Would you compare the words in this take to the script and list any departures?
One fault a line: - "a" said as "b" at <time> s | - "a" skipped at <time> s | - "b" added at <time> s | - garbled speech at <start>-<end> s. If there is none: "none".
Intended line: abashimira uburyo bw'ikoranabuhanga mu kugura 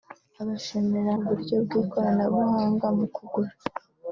none